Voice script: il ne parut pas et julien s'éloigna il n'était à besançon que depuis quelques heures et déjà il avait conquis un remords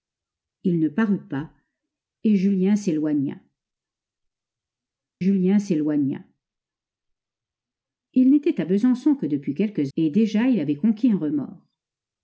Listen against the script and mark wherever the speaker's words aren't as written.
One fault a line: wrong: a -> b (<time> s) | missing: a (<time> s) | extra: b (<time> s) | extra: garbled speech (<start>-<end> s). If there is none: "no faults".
extra: julien s'éloigna (5.2 s)
missing: heures (9.9 s)